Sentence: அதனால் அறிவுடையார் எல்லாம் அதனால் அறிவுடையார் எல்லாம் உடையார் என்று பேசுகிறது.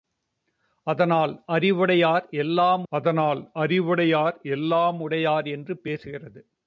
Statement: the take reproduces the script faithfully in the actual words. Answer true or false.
true